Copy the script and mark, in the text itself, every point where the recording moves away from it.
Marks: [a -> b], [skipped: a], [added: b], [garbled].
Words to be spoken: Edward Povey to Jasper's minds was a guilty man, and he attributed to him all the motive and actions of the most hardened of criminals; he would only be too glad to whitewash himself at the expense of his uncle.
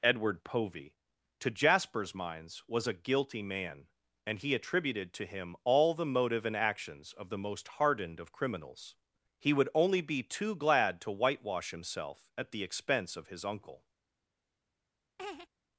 Edward Povey to Jasper's minds was a guilty man, and he attributed to him all the motive and actions of the most hardened of criminals; he would only be too glad to whitewash himself at the expense of his uncle.